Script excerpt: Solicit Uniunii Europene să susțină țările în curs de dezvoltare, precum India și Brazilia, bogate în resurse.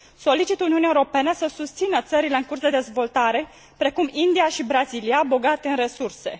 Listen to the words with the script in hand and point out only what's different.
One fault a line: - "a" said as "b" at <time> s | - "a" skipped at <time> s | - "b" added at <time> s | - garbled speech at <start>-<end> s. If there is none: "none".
none